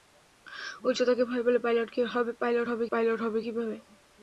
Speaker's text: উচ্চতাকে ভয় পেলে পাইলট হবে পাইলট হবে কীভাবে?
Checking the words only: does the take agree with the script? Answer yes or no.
yes